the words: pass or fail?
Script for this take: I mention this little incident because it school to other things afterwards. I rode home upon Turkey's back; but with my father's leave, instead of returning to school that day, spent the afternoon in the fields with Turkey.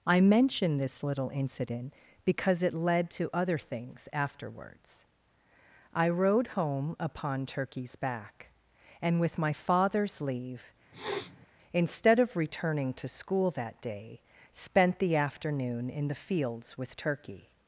fail